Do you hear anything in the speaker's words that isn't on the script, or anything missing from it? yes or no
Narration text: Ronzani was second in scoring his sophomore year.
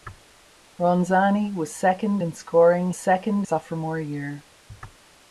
yes